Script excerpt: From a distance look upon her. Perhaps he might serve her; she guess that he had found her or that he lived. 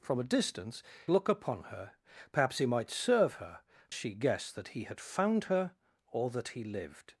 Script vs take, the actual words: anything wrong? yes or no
no